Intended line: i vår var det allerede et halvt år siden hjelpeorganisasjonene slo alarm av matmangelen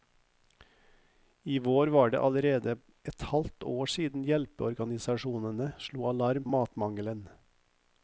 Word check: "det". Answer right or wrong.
right